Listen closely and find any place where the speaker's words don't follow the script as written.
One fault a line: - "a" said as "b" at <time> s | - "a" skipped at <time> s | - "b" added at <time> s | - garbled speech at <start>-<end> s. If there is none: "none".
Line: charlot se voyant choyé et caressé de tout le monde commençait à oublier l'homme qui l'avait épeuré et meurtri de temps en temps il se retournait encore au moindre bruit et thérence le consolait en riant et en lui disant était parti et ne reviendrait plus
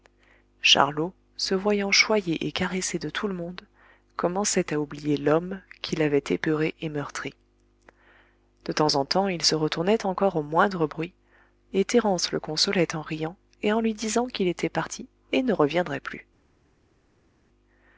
- "qu'il" added at 14.2 s